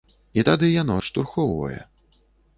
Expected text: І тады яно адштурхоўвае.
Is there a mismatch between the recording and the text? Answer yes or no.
no